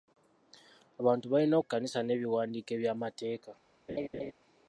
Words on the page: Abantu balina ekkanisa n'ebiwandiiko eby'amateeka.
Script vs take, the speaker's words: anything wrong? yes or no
no